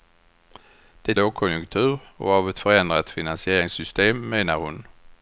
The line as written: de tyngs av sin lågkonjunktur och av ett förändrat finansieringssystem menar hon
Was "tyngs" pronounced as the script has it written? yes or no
no